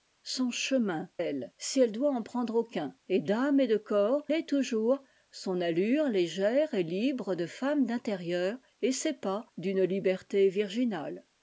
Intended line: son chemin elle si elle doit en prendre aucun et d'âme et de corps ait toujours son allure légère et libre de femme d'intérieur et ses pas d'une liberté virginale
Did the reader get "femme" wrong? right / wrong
right